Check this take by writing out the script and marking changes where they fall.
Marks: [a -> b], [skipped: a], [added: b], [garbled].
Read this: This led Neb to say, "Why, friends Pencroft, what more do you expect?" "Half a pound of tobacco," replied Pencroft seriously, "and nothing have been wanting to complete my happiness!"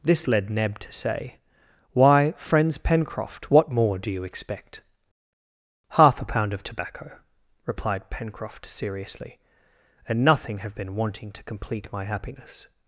This led Neb to say, "Why, friends Pencroft, what more do you expect?" "Half a pound of tobacco," replied Pencroft seriously, "and nothing have been wanting to complete my happiness!"